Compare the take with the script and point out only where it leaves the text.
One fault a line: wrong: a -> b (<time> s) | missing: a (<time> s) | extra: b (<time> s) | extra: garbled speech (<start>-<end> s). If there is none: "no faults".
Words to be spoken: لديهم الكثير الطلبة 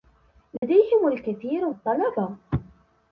no faults